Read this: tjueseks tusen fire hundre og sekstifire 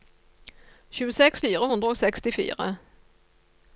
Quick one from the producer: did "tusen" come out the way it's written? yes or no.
no